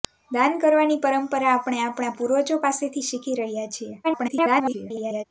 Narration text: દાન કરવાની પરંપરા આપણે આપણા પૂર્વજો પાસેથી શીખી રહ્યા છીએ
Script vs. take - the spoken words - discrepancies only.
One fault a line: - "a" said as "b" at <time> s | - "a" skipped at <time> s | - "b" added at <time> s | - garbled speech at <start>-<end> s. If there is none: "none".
- garbled speech at 4.0-5.2 s